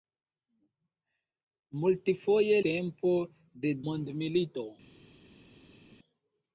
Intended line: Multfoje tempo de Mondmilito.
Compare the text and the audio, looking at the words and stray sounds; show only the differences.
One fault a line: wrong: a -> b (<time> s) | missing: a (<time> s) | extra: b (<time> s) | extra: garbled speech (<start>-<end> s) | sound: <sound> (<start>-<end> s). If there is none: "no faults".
no faults